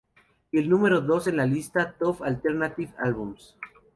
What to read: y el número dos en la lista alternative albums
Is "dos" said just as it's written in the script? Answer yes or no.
yes